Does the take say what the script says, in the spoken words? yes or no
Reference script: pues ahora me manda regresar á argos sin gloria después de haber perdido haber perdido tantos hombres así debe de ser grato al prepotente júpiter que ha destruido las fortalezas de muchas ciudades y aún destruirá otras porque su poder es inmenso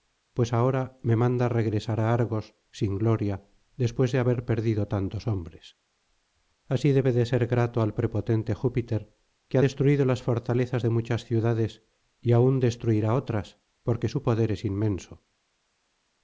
no